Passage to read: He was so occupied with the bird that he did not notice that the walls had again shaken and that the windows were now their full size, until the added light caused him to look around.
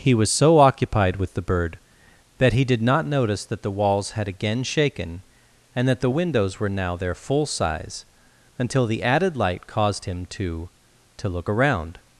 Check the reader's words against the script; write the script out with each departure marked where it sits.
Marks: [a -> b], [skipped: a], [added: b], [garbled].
He was so occupied with the bird that he did not notice that the walls had again shaken and that the windows were now their full size, until the added light caused him to [added: to] look around.